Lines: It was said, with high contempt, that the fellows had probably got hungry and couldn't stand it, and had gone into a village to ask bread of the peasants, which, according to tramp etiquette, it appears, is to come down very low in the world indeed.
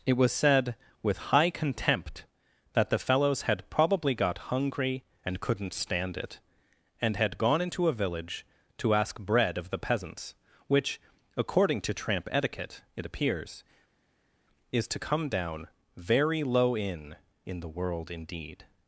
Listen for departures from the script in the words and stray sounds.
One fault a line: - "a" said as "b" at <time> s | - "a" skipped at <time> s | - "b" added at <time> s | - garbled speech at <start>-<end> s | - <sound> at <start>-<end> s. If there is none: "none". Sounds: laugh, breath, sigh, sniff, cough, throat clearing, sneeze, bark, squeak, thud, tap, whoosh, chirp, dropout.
- "in" added at 17.4 s